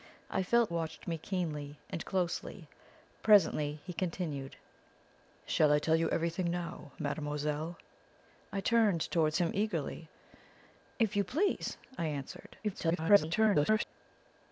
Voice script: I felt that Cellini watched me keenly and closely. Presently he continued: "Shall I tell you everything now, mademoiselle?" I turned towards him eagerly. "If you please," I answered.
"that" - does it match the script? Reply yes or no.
no